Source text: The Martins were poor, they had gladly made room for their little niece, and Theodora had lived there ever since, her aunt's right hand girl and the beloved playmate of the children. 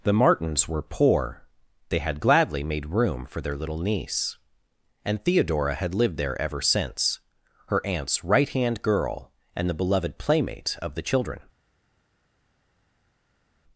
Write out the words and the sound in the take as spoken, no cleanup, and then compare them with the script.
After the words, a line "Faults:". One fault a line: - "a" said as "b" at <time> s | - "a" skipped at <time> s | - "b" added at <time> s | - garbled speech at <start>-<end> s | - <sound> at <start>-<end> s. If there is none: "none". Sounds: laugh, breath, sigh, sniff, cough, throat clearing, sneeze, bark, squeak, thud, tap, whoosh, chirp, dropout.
The Martins were poor, they had gladly made room for their little niece, and Theodora had lived there ever since, her aunt's right hand girl and the beloved playmate of the children.
Faults:
none